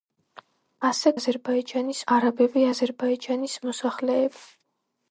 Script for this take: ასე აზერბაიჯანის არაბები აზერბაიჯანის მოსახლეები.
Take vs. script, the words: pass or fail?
pass